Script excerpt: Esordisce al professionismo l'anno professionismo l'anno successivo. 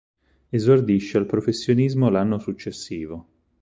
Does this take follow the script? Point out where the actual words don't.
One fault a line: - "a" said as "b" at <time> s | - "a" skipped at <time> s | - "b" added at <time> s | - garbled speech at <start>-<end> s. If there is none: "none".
- "professionismo l'anno" skipped at 2.4 s